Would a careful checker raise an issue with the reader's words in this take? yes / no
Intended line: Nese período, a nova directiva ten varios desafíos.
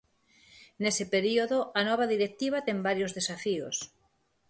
no